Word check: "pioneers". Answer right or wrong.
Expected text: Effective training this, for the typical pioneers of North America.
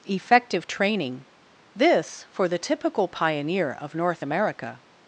wrong